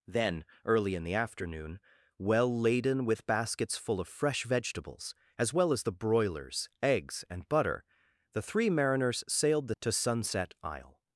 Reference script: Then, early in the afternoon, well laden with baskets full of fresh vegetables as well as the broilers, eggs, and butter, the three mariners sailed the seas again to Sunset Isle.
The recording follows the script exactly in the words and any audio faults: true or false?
false